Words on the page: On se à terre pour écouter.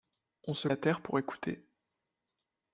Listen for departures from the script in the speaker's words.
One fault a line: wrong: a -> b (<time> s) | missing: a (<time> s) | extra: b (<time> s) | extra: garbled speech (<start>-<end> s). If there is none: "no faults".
no faults